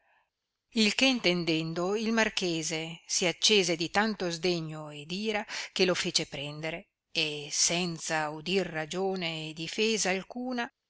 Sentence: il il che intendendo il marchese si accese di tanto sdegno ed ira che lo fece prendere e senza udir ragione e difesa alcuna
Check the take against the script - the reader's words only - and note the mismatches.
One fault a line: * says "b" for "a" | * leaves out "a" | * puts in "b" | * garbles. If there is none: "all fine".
* leaves out "il"